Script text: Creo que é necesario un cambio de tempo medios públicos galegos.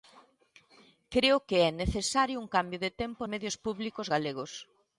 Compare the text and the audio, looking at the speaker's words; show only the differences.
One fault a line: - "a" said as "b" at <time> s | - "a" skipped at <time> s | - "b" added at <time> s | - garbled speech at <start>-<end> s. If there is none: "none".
none